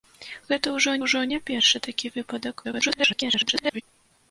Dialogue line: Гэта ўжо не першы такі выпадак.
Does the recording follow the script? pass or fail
fail